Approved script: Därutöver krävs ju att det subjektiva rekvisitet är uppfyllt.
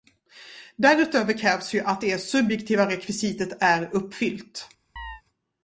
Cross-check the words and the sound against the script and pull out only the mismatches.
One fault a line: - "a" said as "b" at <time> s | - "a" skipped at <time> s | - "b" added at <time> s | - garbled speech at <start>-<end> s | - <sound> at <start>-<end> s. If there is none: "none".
- chirp at 5.0-5.2 s